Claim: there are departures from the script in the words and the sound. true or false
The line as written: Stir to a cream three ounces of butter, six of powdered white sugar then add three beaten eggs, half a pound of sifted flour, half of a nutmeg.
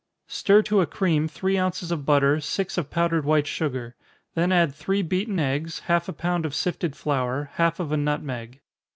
false